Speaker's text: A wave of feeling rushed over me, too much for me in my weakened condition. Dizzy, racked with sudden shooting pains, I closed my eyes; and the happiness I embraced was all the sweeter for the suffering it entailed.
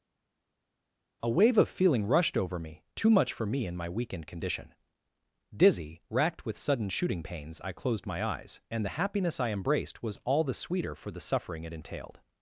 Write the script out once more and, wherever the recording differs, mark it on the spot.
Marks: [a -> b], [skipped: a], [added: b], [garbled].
A wave of feeling rushed over me, too much for me in my weakened condition. Dizzy, racked with sudden shooting pains, I closed my eyes; and the happiness I embraced was all the sweeter for the suffering it entailed.